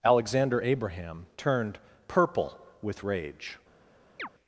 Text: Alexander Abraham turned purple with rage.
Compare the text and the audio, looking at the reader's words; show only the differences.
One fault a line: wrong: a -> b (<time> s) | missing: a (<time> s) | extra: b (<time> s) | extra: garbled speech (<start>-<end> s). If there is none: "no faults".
no faults